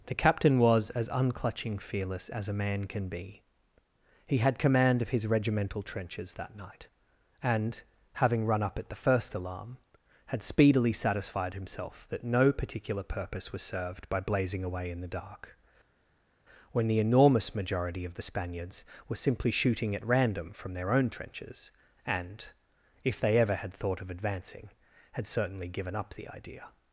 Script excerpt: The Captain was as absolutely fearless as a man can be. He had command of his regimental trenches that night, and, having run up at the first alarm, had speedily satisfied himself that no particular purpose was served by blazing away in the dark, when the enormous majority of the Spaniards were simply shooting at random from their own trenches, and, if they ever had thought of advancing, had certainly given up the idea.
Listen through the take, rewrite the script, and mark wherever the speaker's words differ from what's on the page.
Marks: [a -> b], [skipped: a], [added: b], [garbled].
The Captain was as [absolutely -> unclutching] fearless as a man can be. He had command of his regimental trenches that night, and, having run up at the first alarm, had speedily satisfied himself that no particular purpose was served by blazing away in the dark, when the enormous majority of the Spaniards were simply shooting at random from their own trenches, and, if they ever had thought of advancing, had certainly given up the idea.